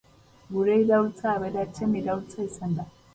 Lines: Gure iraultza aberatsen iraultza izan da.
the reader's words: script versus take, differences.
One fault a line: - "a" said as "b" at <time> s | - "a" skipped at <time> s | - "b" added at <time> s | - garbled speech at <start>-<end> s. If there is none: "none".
none